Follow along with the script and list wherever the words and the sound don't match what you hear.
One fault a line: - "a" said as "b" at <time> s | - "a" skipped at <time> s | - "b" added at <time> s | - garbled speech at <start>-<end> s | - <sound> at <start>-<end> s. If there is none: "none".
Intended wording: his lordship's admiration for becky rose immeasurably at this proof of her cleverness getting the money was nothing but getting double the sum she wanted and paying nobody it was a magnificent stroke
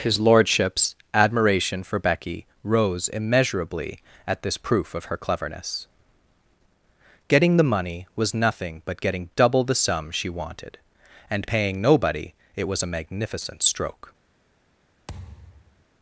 - thud at 15.1-15.9 s